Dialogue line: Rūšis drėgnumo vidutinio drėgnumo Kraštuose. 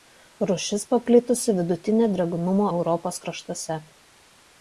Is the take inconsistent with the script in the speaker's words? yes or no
yes